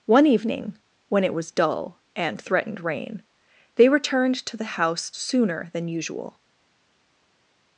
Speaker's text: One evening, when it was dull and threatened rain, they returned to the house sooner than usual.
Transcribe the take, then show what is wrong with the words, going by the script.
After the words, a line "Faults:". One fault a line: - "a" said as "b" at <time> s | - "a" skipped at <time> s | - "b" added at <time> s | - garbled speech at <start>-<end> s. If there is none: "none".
One evening, when it was dull and threatened rain, they returned to the house sooner than usual.
Faults:
none